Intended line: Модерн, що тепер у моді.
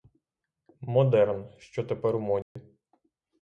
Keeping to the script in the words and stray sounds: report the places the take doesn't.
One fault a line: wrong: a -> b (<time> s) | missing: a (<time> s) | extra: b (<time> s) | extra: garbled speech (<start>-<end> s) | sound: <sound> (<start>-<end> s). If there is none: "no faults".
sound: dropout (2.4-2.6 s)